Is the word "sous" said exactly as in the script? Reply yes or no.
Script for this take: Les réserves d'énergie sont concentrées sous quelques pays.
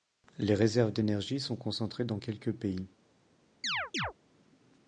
no